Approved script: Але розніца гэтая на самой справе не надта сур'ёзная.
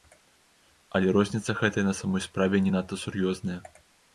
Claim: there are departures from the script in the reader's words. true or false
false